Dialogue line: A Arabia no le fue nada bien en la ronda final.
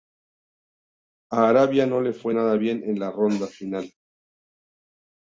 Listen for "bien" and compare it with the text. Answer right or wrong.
right